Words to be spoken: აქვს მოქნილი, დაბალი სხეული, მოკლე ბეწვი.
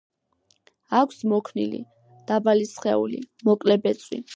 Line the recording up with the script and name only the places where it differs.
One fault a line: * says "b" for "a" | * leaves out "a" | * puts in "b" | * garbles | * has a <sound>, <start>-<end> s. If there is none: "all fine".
all fine